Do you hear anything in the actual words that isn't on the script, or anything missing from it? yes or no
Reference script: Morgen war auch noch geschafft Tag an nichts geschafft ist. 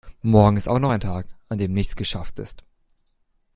yes